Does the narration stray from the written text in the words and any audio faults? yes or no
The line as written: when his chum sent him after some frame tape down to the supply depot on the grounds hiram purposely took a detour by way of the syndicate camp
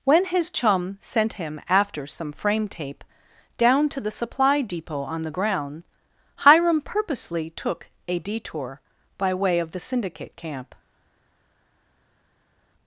yes